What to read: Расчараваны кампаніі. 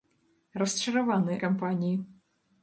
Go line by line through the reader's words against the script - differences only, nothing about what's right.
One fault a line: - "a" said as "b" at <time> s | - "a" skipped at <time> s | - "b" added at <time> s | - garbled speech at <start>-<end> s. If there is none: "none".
none